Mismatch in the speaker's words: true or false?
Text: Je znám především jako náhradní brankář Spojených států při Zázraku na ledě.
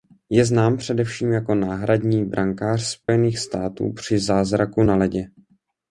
false